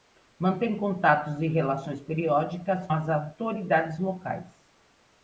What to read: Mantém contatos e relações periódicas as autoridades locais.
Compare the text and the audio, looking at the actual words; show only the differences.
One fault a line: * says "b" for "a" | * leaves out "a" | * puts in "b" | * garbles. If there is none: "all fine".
all fine